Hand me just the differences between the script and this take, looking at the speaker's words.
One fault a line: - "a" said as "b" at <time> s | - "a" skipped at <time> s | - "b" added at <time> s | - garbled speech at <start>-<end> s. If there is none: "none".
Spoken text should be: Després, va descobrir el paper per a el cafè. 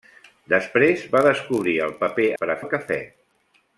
none